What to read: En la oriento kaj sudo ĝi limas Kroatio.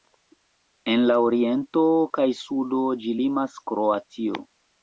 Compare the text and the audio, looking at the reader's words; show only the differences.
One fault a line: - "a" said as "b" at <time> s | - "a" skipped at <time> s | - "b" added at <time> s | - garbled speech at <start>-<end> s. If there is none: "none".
none